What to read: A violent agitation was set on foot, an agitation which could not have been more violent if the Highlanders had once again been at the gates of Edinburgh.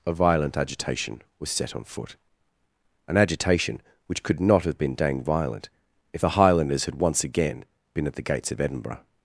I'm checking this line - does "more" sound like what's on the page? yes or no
no